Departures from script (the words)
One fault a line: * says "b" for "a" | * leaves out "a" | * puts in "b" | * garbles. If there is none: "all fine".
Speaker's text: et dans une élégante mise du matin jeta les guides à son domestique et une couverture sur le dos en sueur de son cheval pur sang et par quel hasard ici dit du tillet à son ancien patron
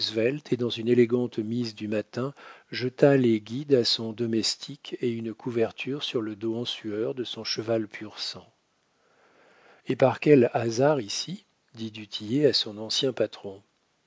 all fine